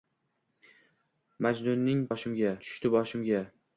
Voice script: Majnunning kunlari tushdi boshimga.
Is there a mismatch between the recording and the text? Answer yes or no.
yes